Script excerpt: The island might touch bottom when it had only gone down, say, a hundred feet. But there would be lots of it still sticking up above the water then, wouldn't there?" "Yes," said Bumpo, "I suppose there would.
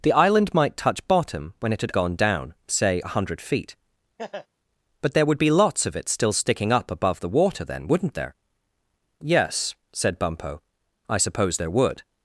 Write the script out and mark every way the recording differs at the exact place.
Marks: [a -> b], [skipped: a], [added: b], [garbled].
The island might touch bottom when it had [skipped: only] gone down, say, a hundred feet. But there would be lots of it still sticking up above the water then, wouldn't there?" "Yes," said Bumpo, "I suppose there would.